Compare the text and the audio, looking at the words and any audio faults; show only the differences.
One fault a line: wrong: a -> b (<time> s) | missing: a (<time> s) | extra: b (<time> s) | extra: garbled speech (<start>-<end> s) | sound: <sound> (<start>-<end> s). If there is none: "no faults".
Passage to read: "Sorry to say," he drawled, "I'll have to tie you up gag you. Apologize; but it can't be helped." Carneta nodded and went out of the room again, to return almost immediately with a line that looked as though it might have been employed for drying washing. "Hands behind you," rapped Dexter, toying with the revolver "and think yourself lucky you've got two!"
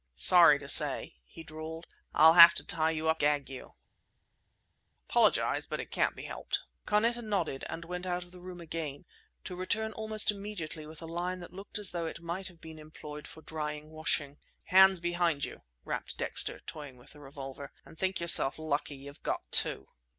no faults